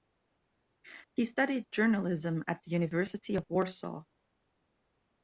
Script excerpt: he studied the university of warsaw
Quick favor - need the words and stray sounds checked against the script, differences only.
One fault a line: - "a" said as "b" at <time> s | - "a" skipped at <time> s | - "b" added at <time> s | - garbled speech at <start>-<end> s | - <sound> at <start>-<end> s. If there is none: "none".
- "journalism at" added at 1.7 s